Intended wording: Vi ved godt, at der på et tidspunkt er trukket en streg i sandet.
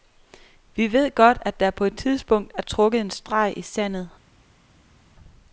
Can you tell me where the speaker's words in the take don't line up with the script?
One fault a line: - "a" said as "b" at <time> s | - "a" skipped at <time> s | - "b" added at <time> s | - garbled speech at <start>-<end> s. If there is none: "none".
none